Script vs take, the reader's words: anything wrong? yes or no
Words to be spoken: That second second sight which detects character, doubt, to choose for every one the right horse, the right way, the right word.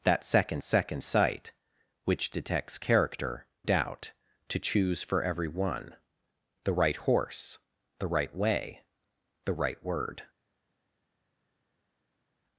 no